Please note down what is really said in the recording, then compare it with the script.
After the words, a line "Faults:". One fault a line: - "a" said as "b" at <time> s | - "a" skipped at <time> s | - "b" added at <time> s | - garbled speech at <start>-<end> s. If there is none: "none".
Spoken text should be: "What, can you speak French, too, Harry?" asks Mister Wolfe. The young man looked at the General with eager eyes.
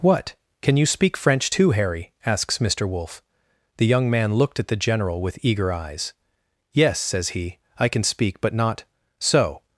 "What, can you speak French, too, Harry?" asks Mister Wolfe. The young man looked at the General with eager eyes. "Yes," says he, "I can speak, but not so
Faults:
- "Yes says he I can speak but not so" added at 6.7 s